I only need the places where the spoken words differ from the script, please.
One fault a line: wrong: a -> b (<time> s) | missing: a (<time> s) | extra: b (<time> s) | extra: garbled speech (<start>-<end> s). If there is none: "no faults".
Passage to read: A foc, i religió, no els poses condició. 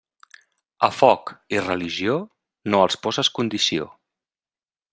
no faults